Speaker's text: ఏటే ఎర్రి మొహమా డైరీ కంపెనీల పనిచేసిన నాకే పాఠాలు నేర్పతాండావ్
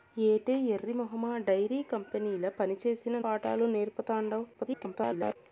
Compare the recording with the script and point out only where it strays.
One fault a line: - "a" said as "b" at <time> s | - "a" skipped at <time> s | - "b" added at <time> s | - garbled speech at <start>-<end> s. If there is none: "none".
- "నాకే" skipped at 3.2 s
- garbled speech at 4.5-5.4 s